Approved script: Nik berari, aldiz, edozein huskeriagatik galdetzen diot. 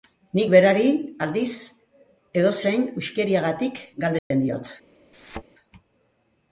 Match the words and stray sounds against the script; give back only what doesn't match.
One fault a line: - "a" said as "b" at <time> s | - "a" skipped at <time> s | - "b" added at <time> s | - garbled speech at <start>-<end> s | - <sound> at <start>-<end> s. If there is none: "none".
- dropout at 4.2-4.3 s
- thud at 5.1-5.4 s